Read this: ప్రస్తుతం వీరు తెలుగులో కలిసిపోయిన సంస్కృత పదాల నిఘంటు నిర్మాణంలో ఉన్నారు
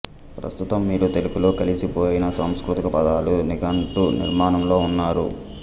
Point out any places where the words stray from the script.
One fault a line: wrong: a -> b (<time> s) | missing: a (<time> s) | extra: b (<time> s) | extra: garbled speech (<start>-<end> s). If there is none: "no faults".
no faults